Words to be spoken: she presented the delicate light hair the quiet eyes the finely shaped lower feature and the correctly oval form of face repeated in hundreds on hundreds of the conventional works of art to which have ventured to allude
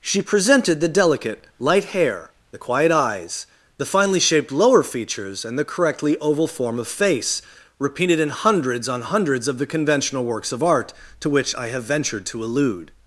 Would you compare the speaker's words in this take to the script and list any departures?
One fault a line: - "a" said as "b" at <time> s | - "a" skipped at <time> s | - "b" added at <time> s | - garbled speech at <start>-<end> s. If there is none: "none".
- "feature" said as "features" at 4.8 s
- "i" added at 11.5 s